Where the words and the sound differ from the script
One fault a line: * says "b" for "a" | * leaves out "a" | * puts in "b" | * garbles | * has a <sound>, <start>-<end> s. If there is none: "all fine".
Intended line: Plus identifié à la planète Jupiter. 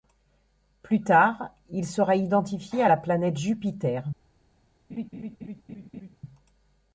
* puts in "tard il sera"
* has a laugh, 4.9-6.2 s